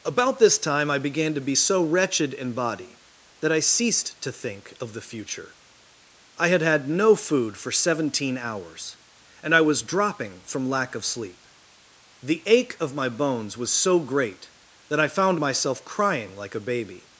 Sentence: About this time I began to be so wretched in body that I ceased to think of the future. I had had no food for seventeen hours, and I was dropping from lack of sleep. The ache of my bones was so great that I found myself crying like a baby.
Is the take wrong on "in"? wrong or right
right